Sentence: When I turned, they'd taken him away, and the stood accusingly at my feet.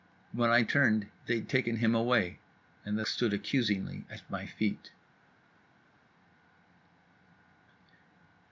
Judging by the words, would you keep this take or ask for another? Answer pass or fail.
pass